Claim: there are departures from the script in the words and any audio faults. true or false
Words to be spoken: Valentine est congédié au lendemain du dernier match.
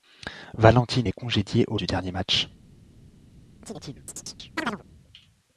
true